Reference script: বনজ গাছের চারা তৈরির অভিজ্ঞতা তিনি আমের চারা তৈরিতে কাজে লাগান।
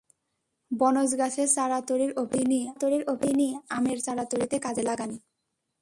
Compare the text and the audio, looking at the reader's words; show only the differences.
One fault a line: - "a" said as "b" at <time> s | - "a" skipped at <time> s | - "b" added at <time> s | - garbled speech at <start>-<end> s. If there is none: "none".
- "তৈরির অভিজ্ঞতা তিনি" added at 2.7 s